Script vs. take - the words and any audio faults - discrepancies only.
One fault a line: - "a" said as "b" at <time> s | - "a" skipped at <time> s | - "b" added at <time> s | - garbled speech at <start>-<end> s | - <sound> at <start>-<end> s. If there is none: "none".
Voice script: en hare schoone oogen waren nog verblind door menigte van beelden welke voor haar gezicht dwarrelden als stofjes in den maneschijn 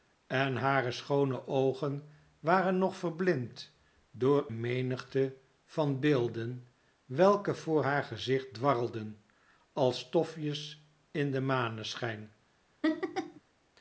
- laugh at 12.8-13.4 s